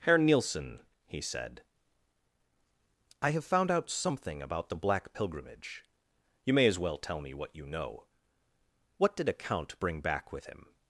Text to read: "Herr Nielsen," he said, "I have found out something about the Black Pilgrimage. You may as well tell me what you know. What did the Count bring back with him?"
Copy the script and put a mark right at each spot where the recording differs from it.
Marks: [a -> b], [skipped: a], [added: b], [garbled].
"Herr Nielsen," he said, "I have found out something about the Black Pilgrimage. You may as well tell me what you know. What did [the -> a] Count bring back with him?"